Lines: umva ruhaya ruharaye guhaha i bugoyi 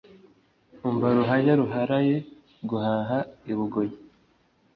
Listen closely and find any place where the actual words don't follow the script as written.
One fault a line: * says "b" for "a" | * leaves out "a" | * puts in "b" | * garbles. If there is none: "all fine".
all fine